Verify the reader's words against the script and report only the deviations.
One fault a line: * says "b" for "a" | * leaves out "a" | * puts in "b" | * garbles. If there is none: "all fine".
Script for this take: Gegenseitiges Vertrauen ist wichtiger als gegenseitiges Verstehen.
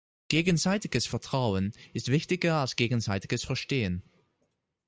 all fine